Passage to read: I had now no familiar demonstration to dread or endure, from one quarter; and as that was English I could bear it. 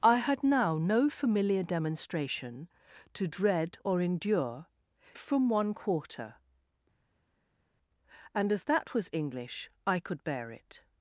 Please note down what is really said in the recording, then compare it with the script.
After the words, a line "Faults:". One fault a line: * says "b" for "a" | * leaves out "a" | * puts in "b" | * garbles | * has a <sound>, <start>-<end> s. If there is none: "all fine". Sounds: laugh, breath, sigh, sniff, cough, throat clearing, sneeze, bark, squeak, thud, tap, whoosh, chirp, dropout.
I had now no familiar demonstration to dread or endure, from one quarter; and as that was English I could bear it.
Faults:
all fine